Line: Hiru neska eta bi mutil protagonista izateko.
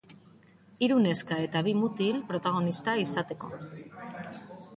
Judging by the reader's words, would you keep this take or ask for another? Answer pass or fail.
pass